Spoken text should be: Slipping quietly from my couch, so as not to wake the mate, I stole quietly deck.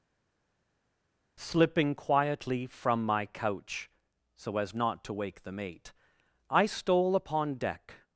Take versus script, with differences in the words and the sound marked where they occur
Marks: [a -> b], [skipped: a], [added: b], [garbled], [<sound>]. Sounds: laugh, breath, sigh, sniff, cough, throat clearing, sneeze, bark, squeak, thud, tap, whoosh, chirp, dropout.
Slipping quietly from my couch, so as not to wake the mate, I stole [quietly -> upon] deck.